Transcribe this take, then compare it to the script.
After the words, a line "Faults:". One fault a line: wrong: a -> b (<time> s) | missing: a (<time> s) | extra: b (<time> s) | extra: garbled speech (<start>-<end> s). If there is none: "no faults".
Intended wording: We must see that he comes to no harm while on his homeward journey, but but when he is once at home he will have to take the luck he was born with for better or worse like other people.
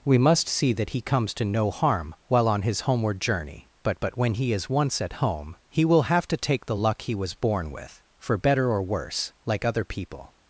We must see that he comes to no harm while on his homeward journey, but but when he is once at home he will have to take the luck he was born with for better or worse like other people.
Faults:
no faults